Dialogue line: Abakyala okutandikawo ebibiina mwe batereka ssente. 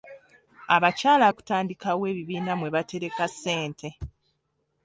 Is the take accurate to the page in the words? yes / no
yes